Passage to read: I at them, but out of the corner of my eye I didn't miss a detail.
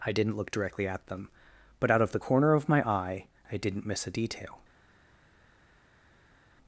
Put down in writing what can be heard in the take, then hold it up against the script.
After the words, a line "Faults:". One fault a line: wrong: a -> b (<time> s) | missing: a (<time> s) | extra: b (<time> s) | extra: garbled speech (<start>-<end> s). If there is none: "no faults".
I didn't look directly at them, but out of the corner of my eye I didn't miss a detail.
Faults:
extra: didn't look directly (0.1 s)